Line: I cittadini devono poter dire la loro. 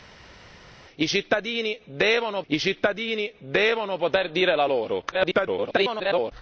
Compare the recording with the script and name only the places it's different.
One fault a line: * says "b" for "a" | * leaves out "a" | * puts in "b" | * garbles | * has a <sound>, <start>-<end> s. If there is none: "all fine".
* puts in "I cittadini devono"
* garbles